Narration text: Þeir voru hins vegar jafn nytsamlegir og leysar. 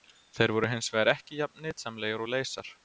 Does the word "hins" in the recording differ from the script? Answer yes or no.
no